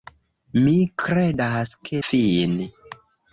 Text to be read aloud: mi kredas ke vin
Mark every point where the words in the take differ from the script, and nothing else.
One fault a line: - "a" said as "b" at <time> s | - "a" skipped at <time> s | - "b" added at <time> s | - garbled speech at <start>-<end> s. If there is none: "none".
none